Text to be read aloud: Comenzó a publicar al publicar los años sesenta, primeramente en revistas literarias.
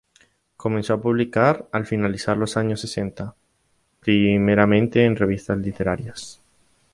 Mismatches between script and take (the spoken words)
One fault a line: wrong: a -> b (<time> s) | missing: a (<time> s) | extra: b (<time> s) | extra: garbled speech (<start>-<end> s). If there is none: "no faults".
wrong: publicar -> finalizar (1.9 s)